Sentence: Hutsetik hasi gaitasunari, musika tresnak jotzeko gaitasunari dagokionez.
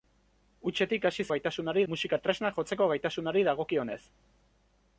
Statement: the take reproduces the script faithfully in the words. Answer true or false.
true